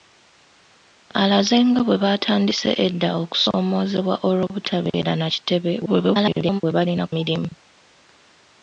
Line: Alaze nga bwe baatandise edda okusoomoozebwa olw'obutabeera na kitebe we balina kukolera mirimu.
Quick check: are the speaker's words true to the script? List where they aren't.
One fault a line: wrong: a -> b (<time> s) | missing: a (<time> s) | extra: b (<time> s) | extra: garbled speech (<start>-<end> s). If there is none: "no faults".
extra: garbled speech (5.9-6.6 s)
missing: kukolera (7.0 s)